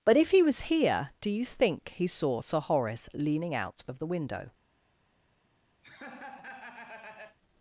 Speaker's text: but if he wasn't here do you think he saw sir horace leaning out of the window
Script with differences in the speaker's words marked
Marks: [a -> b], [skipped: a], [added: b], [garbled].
but if he [wasn't -> was] here do you think he saw sir horace leaning out of the window